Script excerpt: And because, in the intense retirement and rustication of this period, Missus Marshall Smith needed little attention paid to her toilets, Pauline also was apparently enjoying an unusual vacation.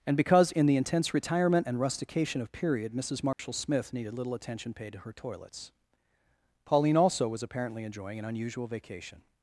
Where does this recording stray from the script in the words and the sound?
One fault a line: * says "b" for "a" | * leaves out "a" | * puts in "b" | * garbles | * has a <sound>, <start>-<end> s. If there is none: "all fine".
* leaves out "this"
* has a dropout, 3.3-3.4 s